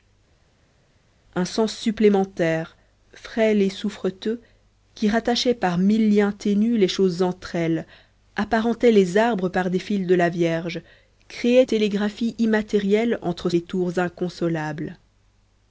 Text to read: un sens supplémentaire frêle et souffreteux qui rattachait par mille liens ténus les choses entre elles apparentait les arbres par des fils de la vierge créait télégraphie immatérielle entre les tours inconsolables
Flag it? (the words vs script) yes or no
no